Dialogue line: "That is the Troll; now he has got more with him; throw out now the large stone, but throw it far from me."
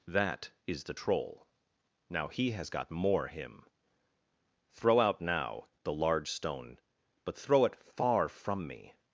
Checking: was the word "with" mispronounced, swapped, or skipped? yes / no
yes